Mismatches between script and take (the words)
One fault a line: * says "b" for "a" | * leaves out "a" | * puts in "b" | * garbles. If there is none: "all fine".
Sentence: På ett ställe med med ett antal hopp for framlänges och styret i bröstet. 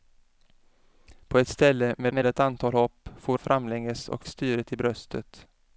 all fine